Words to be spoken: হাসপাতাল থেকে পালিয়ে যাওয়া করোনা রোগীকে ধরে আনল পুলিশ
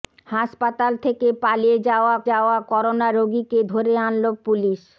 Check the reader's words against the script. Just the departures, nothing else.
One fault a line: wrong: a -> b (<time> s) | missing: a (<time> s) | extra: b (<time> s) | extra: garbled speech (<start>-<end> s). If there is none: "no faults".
extra: যাওয়া (2.3 s)